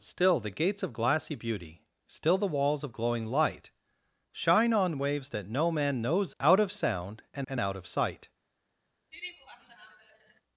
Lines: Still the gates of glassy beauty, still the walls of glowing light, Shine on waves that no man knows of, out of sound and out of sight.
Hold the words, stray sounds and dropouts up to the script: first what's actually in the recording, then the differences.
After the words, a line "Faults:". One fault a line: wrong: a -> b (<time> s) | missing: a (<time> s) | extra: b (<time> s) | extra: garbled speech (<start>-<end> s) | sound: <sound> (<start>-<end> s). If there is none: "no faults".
Still the gates of glassy beauty, still the walls of glowing light, Shine on waves that no man knows out of sound and and out of sight.
Faults:
missing: of (6.3 s)
extra: and (7.5 s)
sound: laugh (9.1-10.4 s)